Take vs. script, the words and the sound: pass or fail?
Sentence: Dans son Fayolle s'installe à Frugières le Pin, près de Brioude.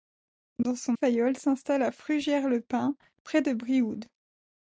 pass